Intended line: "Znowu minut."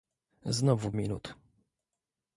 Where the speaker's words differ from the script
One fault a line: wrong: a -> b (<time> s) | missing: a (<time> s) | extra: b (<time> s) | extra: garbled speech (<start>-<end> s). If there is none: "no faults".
no faults